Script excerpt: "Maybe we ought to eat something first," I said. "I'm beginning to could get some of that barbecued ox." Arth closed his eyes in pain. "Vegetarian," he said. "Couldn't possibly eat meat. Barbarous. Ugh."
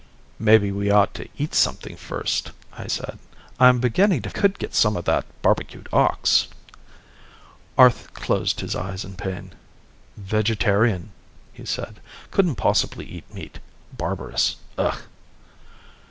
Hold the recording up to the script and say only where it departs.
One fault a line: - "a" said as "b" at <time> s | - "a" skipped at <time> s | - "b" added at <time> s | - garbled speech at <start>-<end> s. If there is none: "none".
none